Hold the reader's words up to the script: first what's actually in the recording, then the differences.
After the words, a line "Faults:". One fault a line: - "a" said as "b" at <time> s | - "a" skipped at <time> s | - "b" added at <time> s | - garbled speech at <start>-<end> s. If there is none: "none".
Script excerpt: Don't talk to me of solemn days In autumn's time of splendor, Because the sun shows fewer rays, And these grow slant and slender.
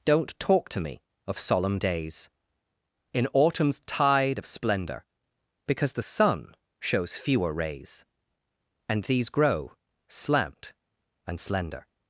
Don't talk to me of solemn days In autumn's tide of splendor, Because the sun shows fewer rays, And these grow slant and slender.
Faults:
- "time" said as "tide" at 3.8 s